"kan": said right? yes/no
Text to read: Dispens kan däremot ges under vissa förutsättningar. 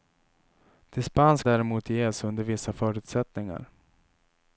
no